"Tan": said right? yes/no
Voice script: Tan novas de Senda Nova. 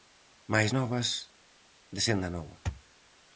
no